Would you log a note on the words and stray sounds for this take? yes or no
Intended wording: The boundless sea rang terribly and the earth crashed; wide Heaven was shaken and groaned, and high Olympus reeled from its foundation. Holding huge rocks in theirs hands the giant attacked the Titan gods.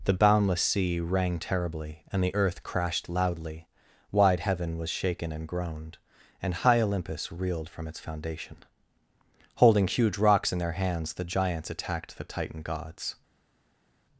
yes